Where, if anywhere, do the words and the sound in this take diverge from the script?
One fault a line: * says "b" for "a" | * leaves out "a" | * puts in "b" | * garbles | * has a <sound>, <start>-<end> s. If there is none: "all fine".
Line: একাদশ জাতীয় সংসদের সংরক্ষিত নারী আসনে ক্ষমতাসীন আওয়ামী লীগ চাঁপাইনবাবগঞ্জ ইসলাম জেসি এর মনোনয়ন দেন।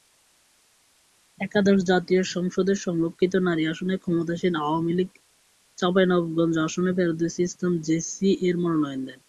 * puts in "আসনে ফেরদৌসী"